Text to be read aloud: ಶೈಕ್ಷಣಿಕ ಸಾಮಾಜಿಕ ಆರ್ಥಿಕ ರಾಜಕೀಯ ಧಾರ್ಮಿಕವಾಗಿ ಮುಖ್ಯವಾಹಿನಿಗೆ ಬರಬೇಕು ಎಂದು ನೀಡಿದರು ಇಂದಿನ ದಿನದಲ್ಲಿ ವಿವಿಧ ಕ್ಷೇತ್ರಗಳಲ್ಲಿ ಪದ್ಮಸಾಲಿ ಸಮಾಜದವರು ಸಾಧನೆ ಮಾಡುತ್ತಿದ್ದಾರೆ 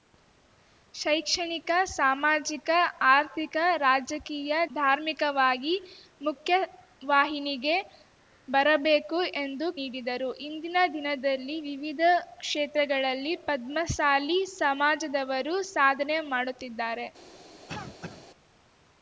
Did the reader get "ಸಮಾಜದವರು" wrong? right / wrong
right